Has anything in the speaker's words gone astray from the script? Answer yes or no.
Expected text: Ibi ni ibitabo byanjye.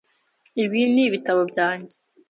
no